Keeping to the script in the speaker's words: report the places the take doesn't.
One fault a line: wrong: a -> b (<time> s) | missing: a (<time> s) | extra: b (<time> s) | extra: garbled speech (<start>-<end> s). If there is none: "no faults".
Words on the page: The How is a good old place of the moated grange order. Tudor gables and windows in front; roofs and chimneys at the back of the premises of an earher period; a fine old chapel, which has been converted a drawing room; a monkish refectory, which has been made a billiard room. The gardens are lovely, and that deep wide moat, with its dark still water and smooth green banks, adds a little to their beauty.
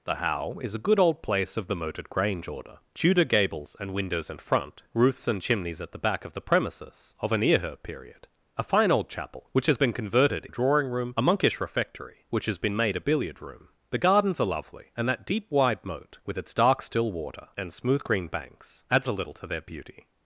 no faults